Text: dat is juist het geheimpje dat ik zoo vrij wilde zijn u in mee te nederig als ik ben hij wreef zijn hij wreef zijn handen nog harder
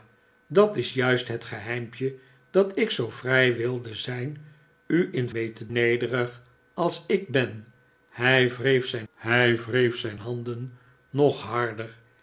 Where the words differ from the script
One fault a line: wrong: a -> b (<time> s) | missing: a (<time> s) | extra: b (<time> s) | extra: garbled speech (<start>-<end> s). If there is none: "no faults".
no faults